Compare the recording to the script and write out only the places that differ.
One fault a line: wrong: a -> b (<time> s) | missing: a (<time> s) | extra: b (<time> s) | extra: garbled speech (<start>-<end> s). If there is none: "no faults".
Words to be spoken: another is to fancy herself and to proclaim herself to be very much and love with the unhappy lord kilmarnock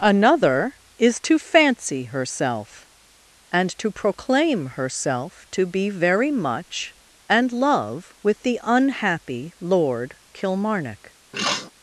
no faults